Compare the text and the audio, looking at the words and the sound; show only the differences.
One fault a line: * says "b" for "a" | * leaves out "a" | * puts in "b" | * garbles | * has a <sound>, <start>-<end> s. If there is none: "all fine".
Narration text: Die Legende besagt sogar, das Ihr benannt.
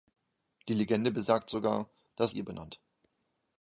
all fine